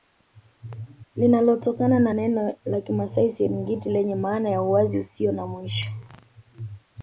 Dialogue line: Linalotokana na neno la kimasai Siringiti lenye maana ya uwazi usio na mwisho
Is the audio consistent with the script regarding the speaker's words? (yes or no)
yes